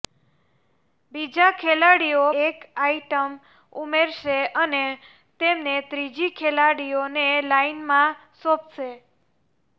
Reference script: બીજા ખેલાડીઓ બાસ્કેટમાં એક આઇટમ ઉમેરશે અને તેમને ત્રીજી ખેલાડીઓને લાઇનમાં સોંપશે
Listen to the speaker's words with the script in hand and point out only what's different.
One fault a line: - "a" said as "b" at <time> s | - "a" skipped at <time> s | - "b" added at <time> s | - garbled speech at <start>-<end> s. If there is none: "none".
- "બાસ્કેટમાં" skipped at 2.2 s